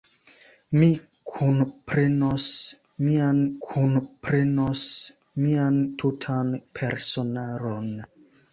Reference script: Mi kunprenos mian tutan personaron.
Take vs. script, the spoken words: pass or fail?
fail